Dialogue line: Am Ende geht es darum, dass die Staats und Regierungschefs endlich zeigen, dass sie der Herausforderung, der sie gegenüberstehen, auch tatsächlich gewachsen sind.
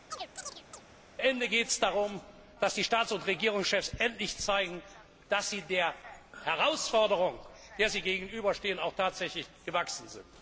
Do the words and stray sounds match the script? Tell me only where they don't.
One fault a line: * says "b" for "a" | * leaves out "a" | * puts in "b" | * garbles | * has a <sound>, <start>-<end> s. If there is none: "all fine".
* has a chirp, 0.1-0.8 s